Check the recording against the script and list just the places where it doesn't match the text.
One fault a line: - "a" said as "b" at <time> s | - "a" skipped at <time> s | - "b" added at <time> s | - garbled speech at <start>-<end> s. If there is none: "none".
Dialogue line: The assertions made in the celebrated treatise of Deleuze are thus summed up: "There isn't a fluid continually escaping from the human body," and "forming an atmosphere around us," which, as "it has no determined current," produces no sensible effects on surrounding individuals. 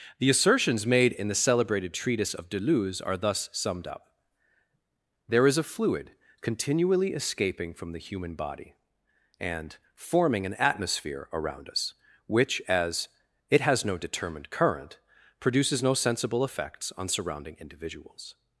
- "isn't" said as "is" at 5.5 s